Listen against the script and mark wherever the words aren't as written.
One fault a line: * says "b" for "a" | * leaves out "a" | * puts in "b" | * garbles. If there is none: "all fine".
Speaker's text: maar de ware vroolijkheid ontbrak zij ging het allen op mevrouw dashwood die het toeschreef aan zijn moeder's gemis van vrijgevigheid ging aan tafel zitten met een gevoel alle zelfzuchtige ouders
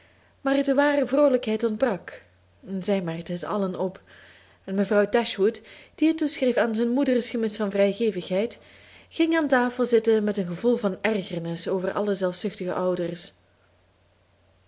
* says "merkten" for "ging"
* puts in "en"
* puts in "van ergernis over"